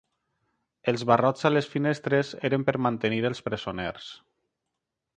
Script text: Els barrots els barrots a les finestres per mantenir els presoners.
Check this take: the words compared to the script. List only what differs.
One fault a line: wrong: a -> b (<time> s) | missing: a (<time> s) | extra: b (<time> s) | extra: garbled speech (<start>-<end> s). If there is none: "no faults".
missing: els barrots (1.4 s)
extra: eren (2.5 s)